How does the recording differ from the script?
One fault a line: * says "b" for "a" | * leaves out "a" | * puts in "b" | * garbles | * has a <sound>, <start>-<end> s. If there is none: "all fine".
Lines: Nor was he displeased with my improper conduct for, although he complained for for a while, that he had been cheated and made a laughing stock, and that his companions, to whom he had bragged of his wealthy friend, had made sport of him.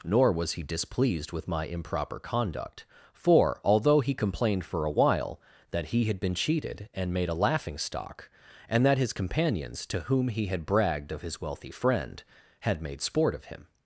* leaves out "for"